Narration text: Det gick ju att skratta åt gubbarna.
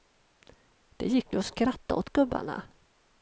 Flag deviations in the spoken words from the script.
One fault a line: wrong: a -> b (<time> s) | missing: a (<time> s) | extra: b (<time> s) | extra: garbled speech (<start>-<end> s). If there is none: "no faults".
no faults